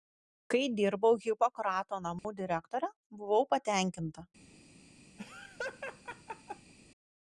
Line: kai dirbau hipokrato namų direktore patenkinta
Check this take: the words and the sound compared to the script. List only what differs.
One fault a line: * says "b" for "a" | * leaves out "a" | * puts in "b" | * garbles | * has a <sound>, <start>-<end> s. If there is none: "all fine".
* has a dropout, 2.2-2.2 s
* puts in "buvau"
* has a laugh, 5.2-6.7 s